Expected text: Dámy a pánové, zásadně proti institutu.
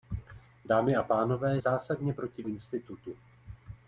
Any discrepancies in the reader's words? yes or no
no